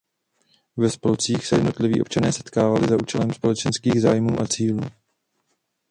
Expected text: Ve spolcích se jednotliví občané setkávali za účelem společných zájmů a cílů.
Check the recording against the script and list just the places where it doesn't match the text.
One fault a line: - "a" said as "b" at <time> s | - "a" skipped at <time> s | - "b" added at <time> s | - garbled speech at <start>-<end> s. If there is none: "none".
none